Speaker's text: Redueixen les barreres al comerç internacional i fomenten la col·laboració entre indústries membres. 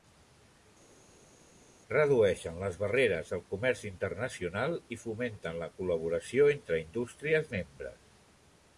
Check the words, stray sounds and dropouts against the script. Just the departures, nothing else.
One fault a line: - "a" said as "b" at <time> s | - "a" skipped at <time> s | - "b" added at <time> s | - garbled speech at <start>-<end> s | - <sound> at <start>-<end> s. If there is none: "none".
none